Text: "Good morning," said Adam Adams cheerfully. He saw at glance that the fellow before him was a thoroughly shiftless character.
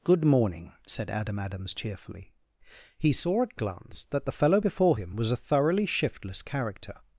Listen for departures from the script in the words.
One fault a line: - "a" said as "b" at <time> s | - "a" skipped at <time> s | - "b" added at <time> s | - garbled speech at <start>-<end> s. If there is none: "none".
none